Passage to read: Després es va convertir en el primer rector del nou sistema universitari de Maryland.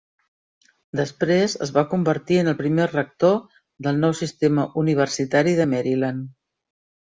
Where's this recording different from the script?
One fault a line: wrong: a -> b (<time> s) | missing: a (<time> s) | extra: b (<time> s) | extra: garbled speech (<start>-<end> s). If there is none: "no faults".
no faults